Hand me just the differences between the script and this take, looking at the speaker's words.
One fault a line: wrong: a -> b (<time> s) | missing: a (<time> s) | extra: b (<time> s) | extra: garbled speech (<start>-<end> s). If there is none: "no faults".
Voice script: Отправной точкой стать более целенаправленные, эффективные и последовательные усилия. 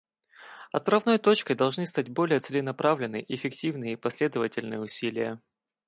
extra: должны (1.6 s)